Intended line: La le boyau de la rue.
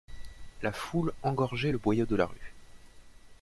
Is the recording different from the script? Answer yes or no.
yes